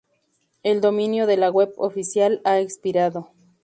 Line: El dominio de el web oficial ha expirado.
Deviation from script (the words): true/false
true